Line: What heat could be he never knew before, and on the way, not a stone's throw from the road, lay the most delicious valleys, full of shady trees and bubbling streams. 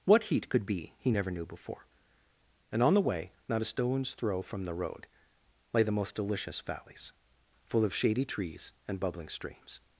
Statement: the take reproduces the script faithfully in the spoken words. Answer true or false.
true